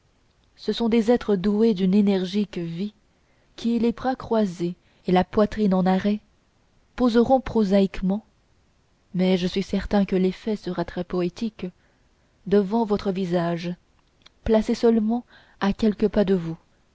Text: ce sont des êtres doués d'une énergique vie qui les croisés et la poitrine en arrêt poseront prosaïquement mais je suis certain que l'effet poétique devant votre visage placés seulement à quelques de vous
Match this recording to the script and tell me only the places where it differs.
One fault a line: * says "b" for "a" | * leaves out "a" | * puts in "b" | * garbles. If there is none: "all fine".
* puts in "bras"
* puts in "sera très"
* puts in "pas"